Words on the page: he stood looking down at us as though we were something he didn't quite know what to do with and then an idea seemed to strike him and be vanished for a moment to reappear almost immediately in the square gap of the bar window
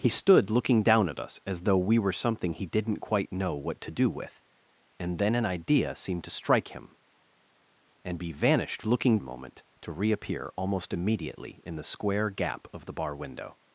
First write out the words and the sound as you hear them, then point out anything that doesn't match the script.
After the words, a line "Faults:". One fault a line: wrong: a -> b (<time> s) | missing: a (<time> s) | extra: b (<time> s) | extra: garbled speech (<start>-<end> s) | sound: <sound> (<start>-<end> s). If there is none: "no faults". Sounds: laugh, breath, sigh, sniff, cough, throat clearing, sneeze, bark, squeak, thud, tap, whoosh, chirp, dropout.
he stood looking down at us as though we were something he didn't quite know what to do with and then an idea seemed to strike him and be vanished looking a moment to reappear almost immediately in the square gap of the bar window
Faults:
wrong: for -> looking (8.8 s)